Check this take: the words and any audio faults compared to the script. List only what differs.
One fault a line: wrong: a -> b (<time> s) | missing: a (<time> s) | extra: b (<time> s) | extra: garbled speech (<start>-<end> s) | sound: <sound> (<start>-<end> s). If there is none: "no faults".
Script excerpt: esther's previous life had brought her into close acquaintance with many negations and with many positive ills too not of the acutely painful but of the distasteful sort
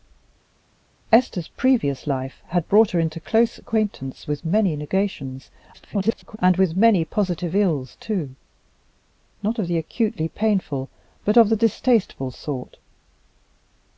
extra: garbled speech (5.7-6.4 s)